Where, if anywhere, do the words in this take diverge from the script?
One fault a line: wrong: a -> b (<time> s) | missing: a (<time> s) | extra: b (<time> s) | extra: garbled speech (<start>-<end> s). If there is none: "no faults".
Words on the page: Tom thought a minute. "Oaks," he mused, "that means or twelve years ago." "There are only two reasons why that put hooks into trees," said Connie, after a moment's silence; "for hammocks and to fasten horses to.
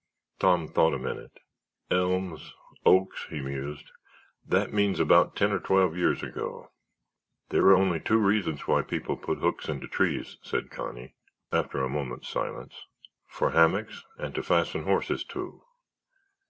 extra: Elms (1.9 s)
extra: about ten (5.0 s)
wrong: that -> people (8.8 s)